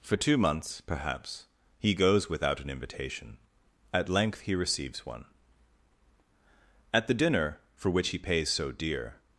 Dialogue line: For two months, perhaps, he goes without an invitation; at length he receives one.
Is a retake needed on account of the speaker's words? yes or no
yes